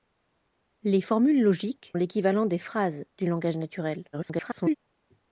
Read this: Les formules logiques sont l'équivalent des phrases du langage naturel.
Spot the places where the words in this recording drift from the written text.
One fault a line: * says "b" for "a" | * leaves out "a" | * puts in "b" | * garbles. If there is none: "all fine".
* leaves out "sont"
* garbles